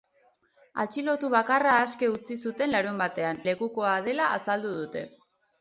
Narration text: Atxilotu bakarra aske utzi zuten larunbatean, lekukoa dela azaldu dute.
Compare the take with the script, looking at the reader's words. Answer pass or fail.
pass